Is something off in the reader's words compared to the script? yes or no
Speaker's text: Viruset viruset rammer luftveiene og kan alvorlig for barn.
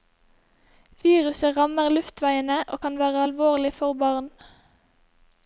yes